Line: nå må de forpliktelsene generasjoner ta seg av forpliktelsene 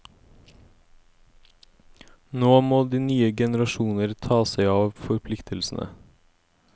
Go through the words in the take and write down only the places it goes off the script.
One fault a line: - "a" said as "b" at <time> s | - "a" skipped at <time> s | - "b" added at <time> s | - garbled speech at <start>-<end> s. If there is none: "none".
- "forpliktelsene" said as "nye" at 3.0 s